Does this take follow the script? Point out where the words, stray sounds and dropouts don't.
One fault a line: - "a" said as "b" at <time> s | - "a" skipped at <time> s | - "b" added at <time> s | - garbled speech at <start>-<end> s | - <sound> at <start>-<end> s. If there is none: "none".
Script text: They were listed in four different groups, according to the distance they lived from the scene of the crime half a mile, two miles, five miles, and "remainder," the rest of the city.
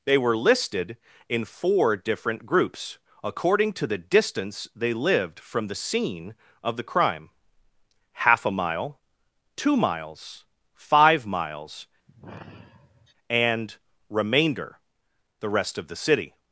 - sigh at 12.1-13.1 s